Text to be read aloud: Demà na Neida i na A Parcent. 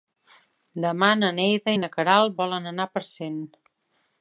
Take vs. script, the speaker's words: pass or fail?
fail